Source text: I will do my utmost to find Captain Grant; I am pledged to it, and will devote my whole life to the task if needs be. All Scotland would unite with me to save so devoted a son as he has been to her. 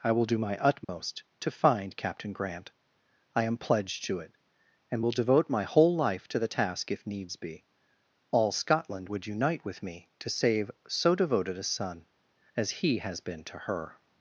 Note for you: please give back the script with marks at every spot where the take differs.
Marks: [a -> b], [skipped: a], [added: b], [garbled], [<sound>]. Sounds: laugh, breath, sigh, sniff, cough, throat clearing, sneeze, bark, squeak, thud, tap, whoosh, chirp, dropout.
I will do my utmost [dropout] to find Captain Grant; I am pledged to it, and will devote my whole life to the task if needs be. All Scotland would unite with me to save so devoted a son as he has been to her.